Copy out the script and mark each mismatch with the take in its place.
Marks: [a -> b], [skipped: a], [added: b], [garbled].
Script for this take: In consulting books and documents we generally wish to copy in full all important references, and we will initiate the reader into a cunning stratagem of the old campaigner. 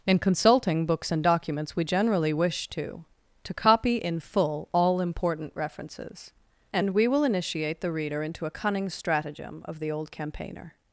In consulting books and documents we generally wish to [added: to] copy in full all important references, and we will initiate the reader into a cunning stratagem of the old campaigner.